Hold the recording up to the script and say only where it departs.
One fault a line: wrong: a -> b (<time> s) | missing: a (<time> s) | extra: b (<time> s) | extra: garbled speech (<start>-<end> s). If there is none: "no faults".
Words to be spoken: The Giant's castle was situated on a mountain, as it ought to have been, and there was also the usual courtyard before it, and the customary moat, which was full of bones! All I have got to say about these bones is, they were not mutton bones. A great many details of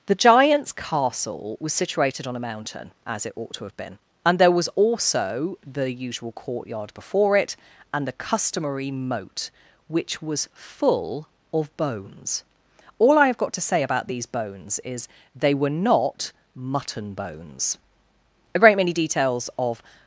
no faults